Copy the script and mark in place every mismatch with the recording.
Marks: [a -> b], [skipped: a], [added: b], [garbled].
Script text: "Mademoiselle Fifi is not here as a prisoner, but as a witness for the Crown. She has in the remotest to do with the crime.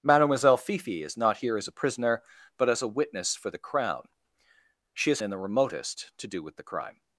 "Mademoiselle Fifi is not here as a prisoner, but as a witness for the Crown. She has in the remotest to do with the crime.